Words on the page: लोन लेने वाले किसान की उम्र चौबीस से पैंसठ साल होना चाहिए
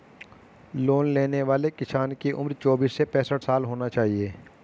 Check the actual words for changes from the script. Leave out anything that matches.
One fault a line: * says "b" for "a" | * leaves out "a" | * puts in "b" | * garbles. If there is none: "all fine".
all fine